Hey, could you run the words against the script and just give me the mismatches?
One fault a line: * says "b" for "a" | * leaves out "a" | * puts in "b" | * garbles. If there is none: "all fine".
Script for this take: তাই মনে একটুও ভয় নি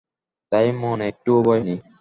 all fine